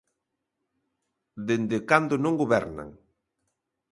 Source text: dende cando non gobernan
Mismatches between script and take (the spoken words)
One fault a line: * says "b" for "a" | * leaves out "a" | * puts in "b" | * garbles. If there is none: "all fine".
all fine